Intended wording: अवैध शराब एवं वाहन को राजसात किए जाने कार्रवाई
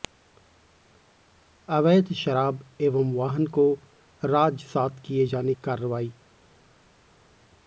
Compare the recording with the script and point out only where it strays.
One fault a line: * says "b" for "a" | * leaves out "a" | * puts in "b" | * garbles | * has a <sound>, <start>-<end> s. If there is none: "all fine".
all fine